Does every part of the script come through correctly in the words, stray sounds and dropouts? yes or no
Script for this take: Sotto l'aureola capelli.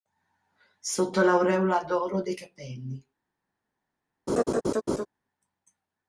no